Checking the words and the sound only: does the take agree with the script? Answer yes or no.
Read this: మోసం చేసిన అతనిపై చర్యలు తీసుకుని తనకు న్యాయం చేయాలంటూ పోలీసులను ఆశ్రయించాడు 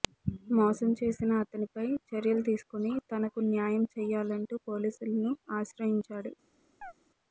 no